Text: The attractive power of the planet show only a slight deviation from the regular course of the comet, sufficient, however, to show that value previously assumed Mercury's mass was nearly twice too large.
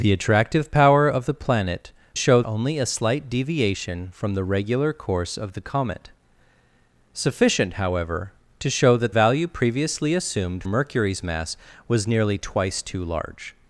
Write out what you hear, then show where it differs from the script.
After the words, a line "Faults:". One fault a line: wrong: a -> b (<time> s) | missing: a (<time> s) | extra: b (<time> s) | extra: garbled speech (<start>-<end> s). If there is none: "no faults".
The attractive power of the planet show only a slight deviation from the regular course of the comet, sufficient, however, to show that value previously assumed Mercury's mass was nearly twice too large.
Faults:
no faults